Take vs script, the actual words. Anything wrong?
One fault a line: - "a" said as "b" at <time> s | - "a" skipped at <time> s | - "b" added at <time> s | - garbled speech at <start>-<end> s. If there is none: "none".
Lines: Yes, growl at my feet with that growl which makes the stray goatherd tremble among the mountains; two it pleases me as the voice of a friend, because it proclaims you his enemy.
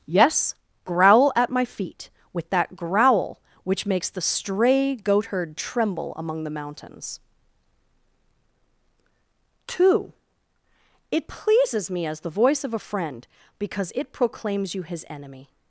none